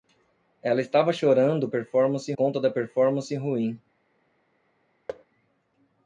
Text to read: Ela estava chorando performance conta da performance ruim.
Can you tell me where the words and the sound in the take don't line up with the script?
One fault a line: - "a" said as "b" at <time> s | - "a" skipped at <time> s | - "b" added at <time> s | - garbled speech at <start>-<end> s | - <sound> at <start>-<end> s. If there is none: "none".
- thud at 5.1-5.2 s